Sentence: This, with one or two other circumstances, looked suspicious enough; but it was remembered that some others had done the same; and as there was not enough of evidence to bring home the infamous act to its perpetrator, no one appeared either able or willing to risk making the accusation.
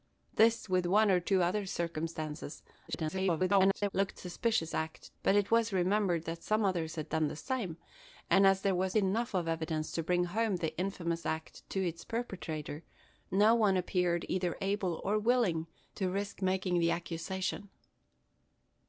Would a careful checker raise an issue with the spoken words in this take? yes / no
yes